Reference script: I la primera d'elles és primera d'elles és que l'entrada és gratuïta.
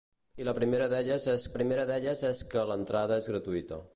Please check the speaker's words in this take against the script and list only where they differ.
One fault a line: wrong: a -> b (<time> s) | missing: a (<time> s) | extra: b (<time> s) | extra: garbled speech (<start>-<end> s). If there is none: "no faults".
no faults